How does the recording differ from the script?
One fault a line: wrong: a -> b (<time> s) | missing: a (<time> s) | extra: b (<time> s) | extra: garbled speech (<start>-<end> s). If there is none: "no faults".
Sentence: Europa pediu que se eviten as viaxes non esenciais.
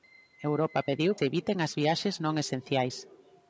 missing: que (1.1 s)